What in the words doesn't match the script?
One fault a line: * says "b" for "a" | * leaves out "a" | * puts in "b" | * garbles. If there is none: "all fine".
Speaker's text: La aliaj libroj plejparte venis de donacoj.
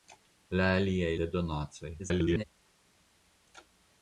* leaves out "libroj plejparte venis"
* garbles